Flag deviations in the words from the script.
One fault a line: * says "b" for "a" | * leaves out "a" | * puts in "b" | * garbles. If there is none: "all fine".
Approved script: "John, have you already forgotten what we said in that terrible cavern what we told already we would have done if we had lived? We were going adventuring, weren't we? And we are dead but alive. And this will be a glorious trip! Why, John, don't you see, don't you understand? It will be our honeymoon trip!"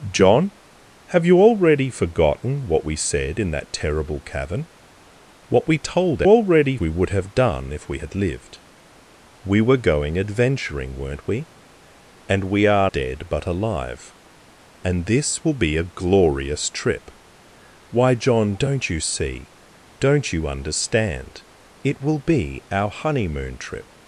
all fine